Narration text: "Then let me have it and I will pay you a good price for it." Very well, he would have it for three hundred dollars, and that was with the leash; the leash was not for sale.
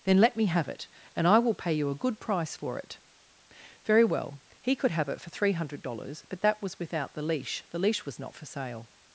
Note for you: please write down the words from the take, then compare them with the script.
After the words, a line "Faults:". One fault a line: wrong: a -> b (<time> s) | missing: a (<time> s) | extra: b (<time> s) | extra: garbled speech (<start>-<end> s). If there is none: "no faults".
"Then let me have it and I will pay you a good price for it." Very well, he could have it for three hundred dollars, but that was without the leash; the leash was not for sale.
Faults:
wrong: would -> could (4.8 s)
wrong: and -> but (6.3 s)
wrong: with -> without (6.8 s)